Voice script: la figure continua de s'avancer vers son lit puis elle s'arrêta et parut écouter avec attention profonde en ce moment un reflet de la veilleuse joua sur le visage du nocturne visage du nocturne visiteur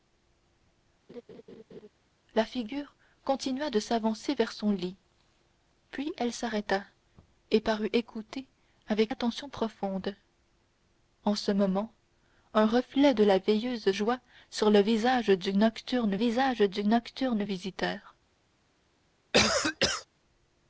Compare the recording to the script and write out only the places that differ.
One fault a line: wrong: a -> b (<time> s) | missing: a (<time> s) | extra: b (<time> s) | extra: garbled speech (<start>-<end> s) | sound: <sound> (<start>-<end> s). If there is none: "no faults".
sound: laugh (1.1-1.9 s)
sound: cough (19.3-20.1 s)